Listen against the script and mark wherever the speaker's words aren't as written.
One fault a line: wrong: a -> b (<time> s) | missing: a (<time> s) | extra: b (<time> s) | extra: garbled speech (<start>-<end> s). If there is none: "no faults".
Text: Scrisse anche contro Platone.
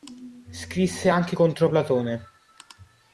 no faults